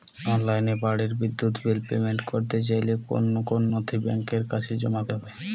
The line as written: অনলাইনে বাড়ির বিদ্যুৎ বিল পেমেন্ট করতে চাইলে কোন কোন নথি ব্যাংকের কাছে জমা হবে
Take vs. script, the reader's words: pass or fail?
pass